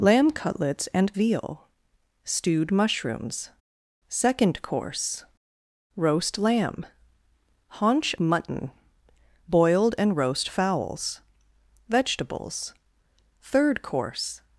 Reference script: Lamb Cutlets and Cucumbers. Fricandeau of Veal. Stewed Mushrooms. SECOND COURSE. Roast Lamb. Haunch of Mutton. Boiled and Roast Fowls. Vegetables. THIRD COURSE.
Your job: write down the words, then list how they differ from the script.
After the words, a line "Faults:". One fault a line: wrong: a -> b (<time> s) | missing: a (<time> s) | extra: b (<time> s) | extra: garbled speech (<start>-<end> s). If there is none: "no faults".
Lamb Cutlets and Veal. Stewed Mushrooms. SECOND COURSE. Roast Lamb. Haunch Mutton. Boiled and Roast Fowls. Vegetables. THIRD COURSE.
Faults:
missing: Cucumbers Fricandeau of (1.1 s)
missing: of (8.1 s)